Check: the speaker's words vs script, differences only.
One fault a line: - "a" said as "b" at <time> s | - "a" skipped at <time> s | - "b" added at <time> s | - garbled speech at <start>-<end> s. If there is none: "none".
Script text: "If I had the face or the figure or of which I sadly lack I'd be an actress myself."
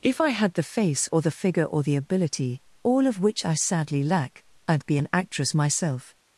- "the ability all" added at 1.8 s